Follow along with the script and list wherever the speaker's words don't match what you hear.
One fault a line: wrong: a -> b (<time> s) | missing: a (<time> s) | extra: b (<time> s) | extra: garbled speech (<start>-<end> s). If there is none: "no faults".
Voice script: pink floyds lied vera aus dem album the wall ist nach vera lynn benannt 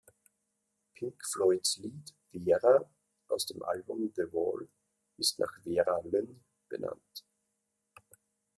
no faults